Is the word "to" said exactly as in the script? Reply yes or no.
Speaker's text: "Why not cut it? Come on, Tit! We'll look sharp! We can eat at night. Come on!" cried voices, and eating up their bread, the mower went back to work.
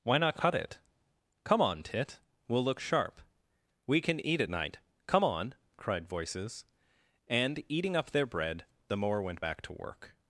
yes